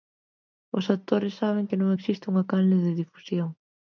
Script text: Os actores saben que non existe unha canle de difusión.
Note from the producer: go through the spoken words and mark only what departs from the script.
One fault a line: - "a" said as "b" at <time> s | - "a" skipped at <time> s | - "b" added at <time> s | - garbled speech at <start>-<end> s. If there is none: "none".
none